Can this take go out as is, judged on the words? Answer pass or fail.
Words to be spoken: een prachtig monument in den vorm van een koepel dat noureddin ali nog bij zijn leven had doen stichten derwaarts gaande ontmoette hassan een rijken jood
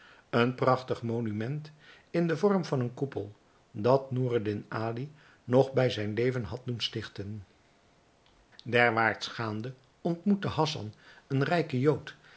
pass